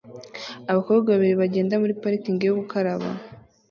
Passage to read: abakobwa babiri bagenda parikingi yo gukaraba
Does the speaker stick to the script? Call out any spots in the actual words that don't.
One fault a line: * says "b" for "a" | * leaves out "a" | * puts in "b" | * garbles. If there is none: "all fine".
* puts in "muri"